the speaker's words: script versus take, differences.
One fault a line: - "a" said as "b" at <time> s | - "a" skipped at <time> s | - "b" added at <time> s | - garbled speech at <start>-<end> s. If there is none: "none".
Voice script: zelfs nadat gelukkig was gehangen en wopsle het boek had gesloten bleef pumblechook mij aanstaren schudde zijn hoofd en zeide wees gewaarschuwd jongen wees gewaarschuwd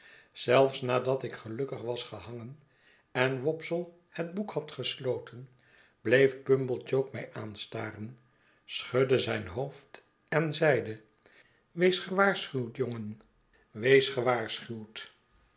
- "ik" added at 1.2 s